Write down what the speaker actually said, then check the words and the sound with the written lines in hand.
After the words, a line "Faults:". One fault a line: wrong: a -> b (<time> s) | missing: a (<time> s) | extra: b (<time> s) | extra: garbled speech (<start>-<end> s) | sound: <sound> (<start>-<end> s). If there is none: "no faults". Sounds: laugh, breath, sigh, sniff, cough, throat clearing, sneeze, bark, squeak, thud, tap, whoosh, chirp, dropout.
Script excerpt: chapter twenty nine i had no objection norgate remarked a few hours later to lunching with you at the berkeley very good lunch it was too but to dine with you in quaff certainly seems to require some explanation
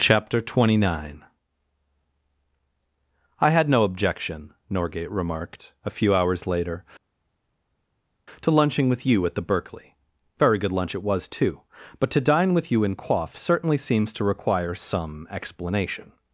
chapter twenty nine i had no objection norgate remarked a few hours later to lunching with you at the berkeley very good lunch it was too but to dine with you in quaff certainly seems to require some explanation
Faults:
no faults